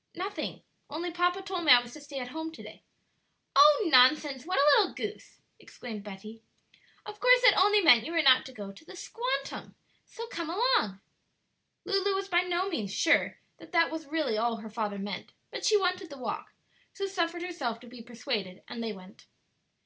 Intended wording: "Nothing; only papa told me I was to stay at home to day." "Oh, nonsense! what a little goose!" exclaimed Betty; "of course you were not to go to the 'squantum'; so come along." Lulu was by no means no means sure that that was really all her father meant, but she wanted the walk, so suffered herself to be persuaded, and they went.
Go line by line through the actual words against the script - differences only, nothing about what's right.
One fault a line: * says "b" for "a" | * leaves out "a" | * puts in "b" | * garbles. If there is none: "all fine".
* puts in "that only meant"
* leaves out "no means"